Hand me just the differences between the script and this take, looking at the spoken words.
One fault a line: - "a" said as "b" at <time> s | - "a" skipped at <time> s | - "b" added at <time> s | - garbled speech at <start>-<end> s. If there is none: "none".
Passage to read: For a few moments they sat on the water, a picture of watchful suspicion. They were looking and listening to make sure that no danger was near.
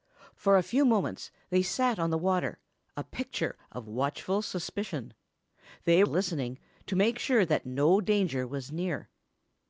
- "were looking and" skipped at 6.0 s